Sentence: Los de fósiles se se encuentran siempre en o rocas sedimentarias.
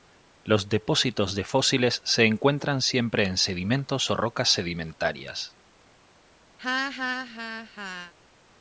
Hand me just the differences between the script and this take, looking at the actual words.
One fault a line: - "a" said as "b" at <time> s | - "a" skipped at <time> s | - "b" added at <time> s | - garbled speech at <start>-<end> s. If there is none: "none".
- "depósitos" added at 0.7 s
- "se" skipped at 2.2 s
- "sedimentos" added at 3.4 s